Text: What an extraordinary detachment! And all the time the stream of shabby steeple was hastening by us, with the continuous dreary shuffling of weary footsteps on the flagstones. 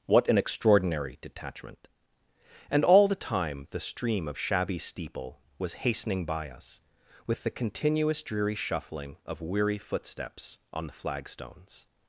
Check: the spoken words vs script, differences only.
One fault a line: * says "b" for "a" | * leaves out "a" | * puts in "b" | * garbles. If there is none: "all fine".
all fine